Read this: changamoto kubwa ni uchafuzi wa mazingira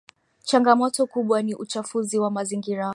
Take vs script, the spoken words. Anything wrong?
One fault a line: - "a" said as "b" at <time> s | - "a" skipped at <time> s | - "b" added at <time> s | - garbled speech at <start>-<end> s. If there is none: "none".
none